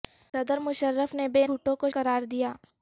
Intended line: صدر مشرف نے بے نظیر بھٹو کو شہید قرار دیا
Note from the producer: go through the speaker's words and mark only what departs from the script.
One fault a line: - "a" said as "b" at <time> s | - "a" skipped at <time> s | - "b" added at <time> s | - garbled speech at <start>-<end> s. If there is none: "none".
- "نظیر" skipped at 1.4 s
- "شہید" skipped at 1.9 s